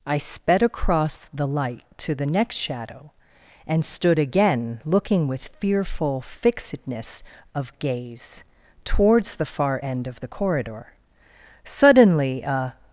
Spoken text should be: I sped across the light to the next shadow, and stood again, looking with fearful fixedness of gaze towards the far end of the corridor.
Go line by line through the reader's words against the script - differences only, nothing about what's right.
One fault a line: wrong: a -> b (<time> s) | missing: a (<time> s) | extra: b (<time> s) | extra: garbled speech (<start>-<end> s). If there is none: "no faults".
extra: Suddenly a (11.6 s)